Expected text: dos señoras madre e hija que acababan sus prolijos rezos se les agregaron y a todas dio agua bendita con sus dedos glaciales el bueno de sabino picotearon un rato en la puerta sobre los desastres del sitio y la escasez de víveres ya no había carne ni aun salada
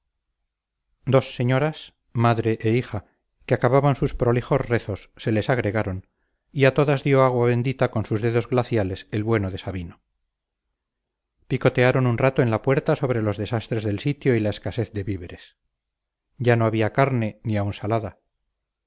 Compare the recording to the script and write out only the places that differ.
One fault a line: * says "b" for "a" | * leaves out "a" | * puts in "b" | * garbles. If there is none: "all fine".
all fine